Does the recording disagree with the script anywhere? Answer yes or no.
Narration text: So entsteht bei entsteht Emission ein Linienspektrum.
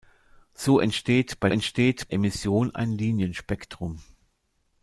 no